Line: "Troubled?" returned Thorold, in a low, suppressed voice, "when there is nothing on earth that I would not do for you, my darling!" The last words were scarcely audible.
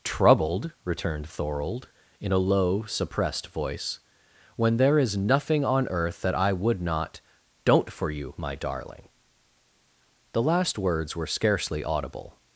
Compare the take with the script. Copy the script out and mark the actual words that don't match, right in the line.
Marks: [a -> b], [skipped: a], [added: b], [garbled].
"Troubled?" returned Thorold, in a low, suppressed voice, "when there is nothing on earth that I would not [do -> don't] for you, my darling!" The last words were scarcely audible.